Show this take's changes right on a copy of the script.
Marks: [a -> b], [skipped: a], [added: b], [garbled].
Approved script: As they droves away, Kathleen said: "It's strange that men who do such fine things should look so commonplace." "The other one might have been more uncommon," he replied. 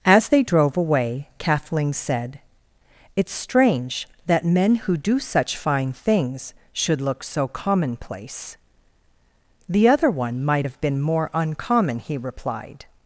As they [droves -> drove] away, Kathleen said: "It's strange that men who do such fine things should look so commonplace." "The other one might have been more uncommon," he replied.